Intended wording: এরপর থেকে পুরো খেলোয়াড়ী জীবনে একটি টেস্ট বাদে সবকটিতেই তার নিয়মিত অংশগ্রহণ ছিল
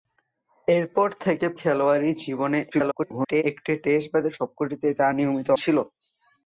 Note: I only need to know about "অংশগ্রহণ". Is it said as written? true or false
false